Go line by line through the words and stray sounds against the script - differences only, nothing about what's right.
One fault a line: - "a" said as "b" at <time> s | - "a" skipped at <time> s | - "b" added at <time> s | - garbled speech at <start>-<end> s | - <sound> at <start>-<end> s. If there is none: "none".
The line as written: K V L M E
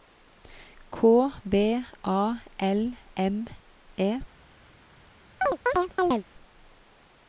- "A" added at 2.0 s
- chirp at 5.4-6.2 s